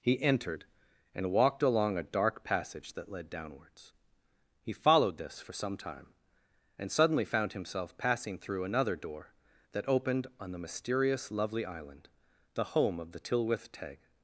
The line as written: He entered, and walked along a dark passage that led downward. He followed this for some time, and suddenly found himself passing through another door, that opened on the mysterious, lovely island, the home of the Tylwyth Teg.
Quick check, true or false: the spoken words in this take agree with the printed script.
false